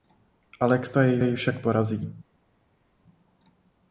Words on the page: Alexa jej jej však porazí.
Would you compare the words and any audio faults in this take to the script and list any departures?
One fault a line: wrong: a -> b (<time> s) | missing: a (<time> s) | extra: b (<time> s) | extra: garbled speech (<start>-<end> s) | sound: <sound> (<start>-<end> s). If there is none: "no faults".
no faults